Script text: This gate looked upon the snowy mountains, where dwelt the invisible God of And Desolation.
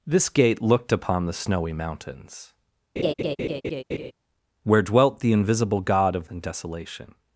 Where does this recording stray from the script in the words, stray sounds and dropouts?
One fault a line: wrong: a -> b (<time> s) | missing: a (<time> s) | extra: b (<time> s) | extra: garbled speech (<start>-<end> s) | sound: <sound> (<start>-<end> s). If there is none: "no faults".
sound: laugh (3.0-4.1 s)